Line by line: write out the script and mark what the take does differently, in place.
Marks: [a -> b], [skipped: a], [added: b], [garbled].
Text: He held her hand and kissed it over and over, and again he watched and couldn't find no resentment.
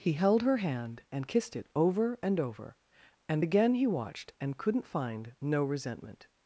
He held her hand and kissed it over and over, and again he watched and couldn't find no resentment.